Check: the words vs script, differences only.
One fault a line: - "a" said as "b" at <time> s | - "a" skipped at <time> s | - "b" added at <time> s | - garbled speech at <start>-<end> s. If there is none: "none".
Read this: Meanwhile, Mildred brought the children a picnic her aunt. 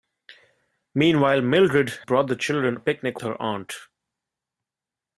none